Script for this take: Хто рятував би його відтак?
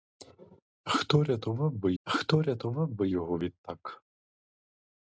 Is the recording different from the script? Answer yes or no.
yes